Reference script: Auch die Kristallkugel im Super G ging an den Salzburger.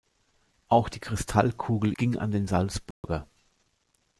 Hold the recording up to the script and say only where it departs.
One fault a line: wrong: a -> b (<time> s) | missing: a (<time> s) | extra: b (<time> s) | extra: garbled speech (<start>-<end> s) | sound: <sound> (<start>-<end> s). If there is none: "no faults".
missing: im Super G (1.9 s)
sound: dropout (2.9-3.0 s)